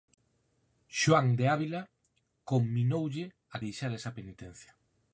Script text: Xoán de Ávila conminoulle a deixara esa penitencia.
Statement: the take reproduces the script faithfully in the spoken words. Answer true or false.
true